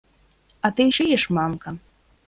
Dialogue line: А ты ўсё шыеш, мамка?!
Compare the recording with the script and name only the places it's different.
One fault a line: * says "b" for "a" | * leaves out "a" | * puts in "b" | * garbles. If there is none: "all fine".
* leaves out "ўсё"